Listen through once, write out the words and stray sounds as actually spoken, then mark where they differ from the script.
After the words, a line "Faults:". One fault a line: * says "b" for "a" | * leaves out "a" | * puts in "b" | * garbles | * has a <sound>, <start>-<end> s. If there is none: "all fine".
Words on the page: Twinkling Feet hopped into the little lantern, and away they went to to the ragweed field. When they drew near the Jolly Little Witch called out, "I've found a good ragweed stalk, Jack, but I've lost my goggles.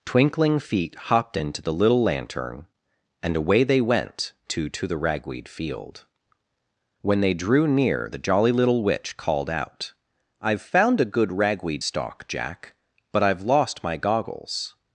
Twinkling Feet hopped into the little lantern, and away they went to to the ragweed field. When they drew near the Jolly Little Witch called out, "I've found a good ragweed stalk, Jack, but I've lost my goggles.
Faults:
all fine